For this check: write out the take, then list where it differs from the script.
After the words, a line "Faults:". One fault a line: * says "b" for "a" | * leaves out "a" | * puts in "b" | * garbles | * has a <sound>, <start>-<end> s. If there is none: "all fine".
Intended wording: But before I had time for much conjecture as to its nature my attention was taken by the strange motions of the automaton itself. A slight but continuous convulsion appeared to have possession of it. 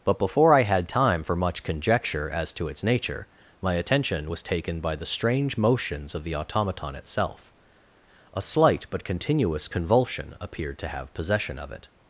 But before I had time for much conjecture as to its nature my attention was taken by the strange motions of the automaton itself. A slight but continuous convulsion appeared to have possession of it.
Faults:
all fine